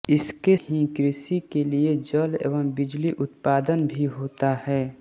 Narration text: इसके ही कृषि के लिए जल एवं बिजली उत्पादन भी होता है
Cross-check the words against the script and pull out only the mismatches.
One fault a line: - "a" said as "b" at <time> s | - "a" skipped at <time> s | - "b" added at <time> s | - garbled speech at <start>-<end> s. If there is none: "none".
none